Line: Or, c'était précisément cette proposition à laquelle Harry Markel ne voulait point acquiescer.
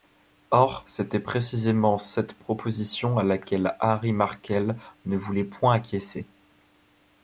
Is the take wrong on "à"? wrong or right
right